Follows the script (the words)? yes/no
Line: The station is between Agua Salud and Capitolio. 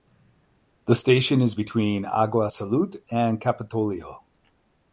yes